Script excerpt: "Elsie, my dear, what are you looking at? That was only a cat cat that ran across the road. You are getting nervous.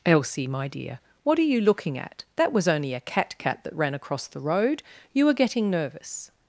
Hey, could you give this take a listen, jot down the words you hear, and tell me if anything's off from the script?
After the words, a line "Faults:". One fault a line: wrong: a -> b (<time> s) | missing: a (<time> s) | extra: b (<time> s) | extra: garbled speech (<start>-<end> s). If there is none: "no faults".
"Elsie, my dear, what are you looking at? That was only a cat cat that ran across the road. You are getting nervous.
Faults:
no faults